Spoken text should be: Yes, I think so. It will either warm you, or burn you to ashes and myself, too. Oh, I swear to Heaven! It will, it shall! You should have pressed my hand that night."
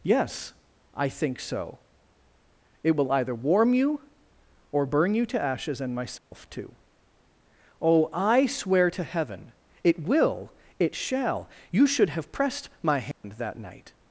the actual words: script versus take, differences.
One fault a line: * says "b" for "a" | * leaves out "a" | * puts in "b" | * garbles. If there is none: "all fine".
all fine